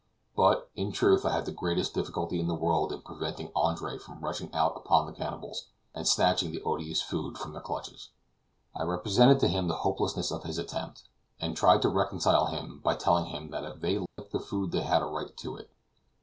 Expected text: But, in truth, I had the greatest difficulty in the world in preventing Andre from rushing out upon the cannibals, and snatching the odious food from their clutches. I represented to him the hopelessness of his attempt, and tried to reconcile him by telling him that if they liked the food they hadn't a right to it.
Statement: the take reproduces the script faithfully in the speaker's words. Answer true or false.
false